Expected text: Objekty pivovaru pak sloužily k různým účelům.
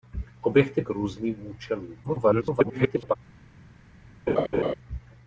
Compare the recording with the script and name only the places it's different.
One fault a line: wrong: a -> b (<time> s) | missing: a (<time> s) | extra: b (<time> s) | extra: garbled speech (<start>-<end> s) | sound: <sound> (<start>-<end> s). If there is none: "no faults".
missing: pivovaru pak sloužily (0.8 s)
extra: garbled speech (2.0-3.2 s)
sound: laugh (4.3-4.7 s)